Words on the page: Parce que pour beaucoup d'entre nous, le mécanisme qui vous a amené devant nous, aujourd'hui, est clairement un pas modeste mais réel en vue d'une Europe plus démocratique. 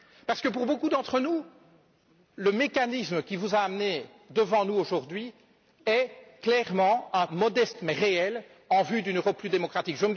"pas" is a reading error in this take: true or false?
true